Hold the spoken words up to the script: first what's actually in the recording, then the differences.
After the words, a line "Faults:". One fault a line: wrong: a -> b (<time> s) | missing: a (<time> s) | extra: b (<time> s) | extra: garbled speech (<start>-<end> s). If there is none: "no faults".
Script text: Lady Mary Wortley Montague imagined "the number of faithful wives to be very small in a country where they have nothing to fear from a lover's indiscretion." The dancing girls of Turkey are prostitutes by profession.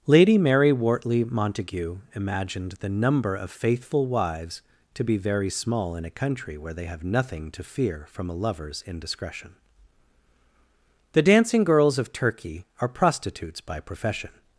Lady Mary Wortley Montague imagined "the number of faithful wives to be very small in a country where they have nothing to fear from a lover's indiscretion." The dancing girls of Turkey are prostitutes by profession.
Faults:
no faults